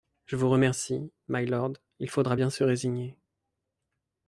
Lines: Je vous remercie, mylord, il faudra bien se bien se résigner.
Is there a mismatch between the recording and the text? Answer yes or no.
yes